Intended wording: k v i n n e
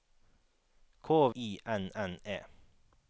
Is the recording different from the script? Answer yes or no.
yes